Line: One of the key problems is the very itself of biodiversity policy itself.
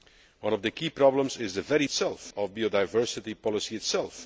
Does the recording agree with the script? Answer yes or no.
yes